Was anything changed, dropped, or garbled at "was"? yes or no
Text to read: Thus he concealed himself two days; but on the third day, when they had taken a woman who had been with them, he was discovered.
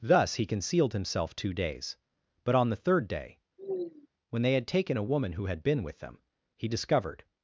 yes